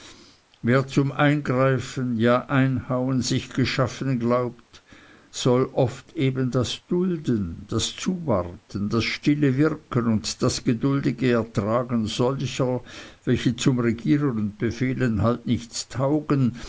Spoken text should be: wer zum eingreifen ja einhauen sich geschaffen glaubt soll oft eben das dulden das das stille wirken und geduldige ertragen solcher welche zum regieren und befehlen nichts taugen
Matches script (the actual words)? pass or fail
fail